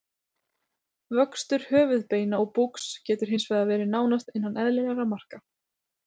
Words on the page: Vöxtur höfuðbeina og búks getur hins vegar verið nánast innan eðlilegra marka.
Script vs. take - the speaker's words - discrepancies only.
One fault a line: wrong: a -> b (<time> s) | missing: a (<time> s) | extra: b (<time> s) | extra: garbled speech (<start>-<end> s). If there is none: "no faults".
no faults